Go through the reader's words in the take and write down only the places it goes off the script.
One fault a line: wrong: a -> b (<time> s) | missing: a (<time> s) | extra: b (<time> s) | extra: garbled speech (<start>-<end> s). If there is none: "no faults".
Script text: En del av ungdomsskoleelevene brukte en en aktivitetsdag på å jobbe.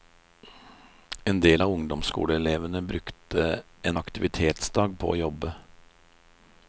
missing: en (4.0 s)